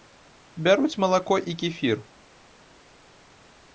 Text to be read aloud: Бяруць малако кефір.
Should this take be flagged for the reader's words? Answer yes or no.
yes